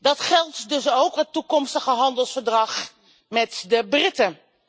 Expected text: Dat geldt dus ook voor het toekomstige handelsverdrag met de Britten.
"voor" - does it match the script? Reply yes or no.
no